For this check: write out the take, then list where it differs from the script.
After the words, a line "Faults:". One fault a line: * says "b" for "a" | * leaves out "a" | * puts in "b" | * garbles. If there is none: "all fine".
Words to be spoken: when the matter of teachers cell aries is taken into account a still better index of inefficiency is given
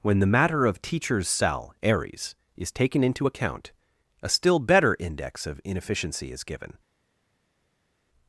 when the matter of teachers cell aries is taken into account a still better index of inefficiency is given
Faults:
all fine